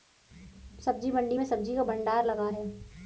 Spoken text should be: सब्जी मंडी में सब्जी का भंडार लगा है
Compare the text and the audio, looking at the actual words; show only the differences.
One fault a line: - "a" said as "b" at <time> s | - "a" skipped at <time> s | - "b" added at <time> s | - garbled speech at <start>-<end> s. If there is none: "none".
none